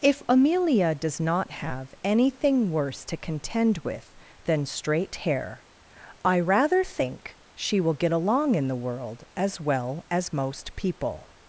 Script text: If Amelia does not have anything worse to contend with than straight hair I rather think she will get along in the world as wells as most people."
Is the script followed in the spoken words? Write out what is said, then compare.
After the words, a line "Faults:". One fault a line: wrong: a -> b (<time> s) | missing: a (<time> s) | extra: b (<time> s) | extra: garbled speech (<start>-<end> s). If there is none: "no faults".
If Amelia does not have anything worse to contend with than straight hair I rather think she will get along in the world as well as most people."
Faults:
wrong: wells -> well (9.6 s)